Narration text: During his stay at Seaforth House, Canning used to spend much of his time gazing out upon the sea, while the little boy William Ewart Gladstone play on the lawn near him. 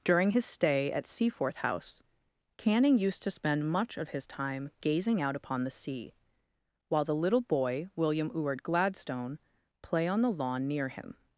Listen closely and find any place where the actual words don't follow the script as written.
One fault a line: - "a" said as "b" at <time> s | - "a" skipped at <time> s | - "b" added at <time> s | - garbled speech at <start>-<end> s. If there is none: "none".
none